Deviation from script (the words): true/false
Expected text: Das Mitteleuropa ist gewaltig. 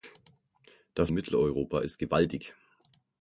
false